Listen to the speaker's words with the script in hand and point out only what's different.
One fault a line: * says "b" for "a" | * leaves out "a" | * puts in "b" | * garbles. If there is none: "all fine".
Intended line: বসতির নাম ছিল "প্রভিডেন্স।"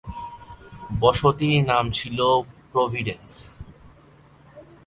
all fine